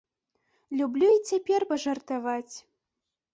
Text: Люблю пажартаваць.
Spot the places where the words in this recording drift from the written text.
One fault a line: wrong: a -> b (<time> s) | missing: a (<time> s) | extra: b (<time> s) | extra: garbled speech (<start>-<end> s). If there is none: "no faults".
extra: і цяпер (1.1 s)